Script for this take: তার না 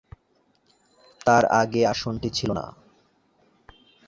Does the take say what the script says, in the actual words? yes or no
no